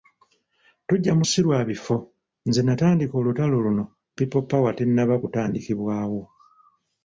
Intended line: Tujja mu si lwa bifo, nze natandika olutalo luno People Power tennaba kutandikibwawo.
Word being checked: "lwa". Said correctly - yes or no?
yes